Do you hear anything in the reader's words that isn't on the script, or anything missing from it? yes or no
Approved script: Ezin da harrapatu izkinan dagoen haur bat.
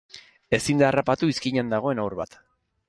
no